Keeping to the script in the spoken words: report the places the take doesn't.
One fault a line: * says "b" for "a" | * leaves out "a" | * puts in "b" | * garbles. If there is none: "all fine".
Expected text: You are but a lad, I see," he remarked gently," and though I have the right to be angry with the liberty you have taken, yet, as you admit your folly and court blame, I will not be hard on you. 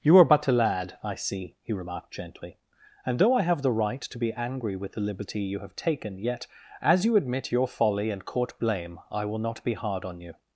all fine